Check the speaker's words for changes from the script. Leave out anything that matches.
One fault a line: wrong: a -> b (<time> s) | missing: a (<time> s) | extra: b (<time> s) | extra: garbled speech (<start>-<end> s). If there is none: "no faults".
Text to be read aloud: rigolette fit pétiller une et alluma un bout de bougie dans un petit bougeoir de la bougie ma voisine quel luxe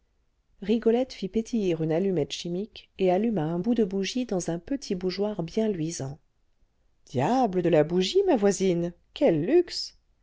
extra: allumette chimique (1.9 s)
extra: bien luisant diable (5.4 s)